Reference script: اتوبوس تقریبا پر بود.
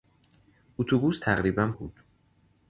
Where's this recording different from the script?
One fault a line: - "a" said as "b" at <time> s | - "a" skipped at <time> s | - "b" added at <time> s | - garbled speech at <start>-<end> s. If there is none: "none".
- "پر" skipped at 1.7 s